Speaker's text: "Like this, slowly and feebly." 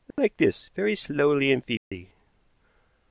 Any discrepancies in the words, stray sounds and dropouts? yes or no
yes